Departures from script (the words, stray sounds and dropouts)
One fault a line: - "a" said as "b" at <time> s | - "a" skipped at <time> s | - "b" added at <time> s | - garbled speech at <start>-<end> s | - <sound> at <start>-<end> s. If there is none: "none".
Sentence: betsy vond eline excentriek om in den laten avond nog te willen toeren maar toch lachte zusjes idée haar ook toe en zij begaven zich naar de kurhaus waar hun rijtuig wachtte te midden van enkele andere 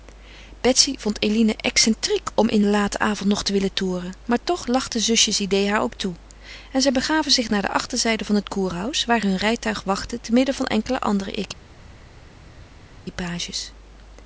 - "achterzijde van het" added at 7.7 s